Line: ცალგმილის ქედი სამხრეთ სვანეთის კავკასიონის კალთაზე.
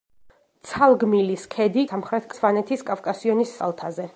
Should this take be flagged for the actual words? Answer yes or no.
no